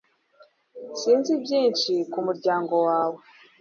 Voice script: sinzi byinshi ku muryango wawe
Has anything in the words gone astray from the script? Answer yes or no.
no